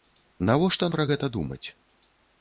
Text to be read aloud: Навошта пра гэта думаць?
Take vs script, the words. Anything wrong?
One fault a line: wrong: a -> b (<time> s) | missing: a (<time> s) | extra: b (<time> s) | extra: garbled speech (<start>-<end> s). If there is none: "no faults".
no faults